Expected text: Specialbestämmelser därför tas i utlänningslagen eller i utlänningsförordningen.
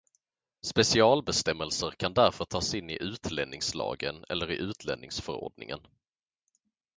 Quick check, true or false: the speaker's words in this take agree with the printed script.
false